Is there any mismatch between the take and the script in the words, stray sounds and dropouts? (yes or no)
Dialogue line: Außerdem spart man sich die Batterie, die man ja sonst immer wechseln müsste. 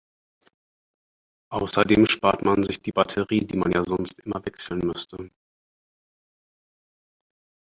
no